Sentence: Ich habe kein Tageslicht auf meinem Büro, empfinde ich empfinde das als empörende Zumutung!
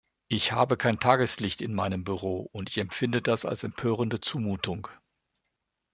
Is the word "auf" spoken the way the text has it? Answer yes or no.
no